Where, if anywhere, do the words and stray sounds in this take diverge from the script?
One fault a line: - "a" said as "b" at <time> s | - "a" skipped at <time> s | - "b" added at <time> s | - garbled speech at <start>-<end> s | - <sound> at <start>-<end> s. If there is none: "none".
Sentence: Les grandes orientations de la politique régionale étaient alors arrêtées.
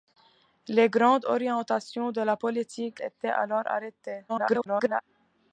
- "régionale" skipped at 3.0 s
- garbled speech at 4.3-5.0 s